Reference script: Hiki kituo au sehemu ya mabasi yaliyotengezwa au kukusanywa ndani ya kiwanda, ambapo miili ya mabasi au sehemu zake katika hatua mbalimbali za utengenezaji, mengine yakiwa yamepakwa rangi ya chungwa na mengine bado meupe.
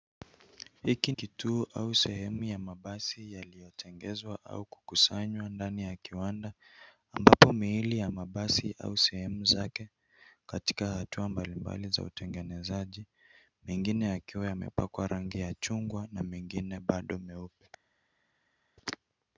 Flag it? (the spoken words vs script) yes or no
no